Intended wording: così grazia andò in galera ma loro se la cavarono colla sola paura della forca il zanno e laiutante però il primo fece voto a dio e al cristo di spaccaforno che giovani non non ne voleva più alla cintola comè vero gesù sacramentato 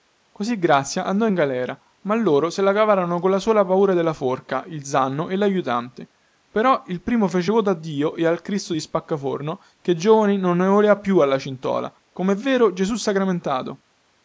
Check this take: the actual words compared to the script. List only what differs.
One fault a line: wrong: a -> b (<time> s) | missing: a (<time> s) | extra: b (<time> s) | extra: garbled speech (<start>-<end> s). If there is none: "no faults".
missing: non (10.6 s)